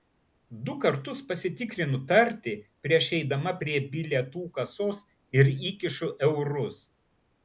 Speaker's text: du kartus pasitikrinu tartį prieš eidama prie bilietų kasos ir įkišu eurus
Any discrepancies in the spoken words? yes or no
no